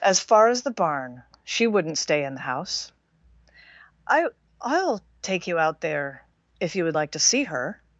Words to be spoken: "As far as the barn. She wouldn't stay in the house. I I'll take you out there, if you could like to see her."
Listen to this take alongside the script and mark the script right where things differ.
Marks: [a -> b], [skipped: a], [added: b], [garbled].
"As far as the barn. She wouldn't stay in the house. I I'll take you out there, if you [could -> would] like to see her."